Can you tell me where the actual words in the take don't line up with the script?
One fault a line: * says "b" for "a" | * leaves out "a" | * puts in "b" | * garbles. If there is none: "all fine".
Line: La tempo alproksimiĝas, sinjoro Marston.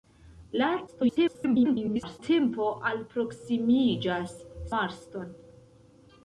* garbles
* leaves out "sinjoro"